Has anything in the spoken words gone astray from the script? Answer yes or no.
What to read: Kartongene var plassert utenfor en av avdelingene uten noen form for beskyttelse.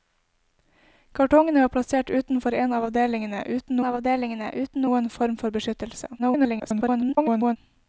yes